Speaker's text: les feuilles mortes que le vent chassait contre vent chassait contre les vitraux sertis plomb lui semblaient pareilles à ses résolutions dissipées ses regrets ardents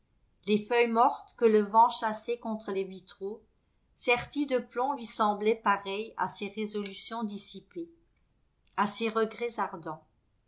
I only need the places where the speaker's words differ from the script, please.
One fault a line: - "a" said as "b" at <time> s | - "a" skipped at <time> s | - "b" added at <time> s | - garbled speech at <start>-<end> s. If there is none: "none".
- "vent chassait contre" skipped at 2.7 s
- "de" added at 4.5 s
- "à" added at 8.8 s